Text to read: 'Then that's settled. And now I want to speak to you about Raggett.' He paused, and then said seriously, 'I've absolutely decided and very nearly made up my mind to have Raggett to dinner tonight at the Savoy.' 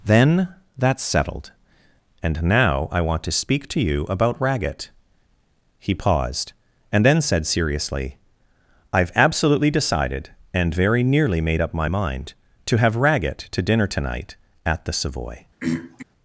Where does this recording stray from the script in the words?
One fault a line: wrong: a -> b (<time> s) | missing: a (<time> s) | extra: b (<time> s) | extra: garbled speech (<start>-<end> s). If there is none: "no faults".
no faults